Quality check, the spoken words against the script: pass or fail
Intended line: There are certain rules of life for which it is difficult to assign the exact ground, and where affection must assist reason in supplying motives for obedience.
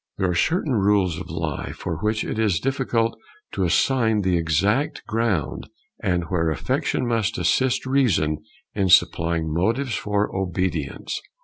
pass